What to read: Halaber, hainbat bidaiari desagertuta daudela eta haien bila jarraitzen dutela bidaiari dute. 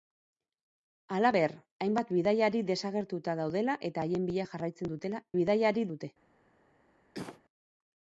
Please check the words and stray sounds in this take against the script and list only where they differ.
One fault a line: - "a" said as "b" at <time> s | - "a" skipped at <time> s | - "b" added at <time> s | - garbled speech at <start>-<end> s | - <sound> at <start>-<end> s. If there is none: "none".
- cough at 7.1-7.4 s